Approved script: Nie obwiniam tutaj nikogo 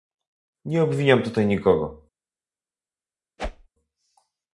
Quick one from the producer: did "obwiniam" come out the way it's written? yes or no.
yes